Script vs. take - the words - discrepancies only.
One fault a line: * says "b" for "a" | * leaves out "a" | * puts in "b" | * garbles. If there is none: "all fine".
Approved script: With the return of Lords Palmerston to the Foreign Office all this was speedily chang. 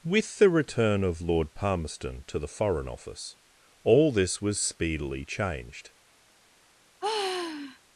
* says "Lord" for "Lords"
* says "changed" for "chang"